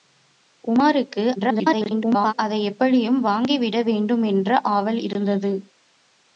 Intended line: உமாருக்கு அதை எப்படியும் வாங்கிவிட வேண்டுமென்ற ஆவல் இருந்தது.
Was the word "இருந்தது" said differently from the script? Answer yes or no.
no